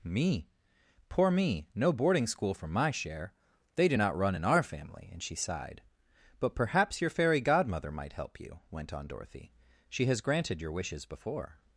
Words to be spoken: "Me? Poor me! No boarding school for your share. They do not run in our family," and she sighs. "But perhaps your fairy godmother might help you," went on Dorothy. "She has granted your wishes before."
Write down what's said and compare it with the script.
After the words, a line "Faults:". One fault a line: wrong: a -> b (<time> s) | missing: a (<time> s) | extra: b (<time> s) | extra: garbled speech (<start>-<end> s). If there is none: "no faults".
"Me? Poor me! No boarding school for my share. They do not run in our family," and she sighed. "But perhaps your fairy godmother might help you," went on Dorothy. "She has granted your wishes before."
Faults:
wrong: your -> my (2.7 s)
wrong: sighs -> sighed (5.3 s)